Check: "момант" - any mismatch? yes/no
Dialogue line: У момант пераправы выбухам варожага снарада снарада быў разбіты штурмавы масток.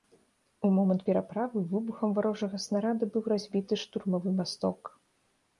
no